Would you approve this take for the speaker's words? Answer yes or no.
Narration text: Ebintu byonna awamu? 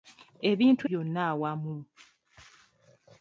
yes